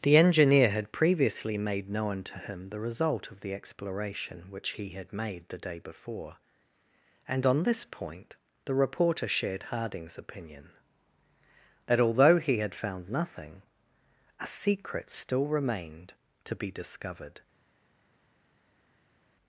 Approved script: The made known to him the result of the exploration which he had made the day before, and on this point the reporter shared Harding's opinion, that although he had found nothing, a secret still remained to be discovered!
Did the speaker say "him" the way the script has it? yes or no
yes